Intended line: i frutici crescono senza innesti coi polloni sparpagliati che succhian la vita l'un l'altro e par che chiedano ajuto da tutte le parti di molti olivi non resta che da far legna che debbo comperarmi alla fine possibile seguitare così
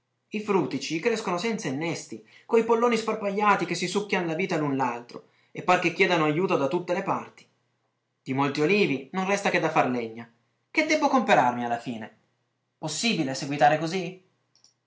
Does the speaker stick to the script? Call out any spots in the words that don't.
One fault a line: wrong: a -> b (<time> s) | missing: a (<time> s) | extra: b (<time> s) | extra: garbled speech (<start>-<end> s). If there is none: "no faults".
extra: si (3.7 s)